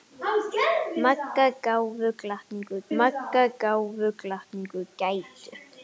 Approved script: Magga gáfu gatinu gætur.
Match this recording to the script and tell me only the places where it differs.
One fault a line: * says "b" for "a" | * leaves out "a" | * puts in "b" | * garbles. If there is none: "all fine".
* puts in "magga gáfu gatinu"